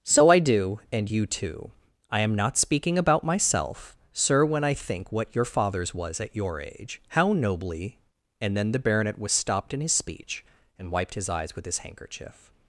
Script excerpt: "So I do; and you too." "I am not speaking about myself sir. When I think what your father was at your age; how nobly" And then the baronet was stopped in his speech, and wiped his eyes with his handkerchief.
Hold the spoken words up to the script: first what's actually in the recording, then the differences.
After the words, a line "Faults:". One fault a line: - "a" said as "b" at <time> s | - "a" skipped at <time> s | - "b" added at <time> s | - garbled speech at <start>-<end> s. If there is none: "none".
"So I do; and you too." "I am not speaking about myself sir. When I think what your fathers was at your age; how nobly" And then the baronet was stopped in his speech, and wiped his eyes with his handkerchief.
Faults:
- "father" said as "fathers" at 5.4 s